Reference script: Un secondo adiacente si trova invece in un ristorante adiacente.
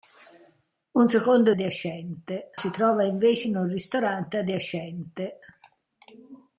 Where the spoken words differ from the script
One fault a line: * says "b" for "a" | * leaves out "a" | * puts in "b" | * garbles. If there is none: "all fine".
all fine